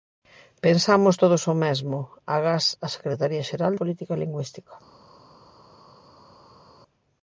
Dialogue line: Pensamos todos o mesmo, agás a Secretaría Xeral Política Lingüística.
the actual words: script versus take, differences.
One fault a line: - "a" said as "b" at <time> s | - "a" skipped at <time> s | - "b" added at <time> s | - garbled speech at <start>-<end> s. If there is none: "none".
none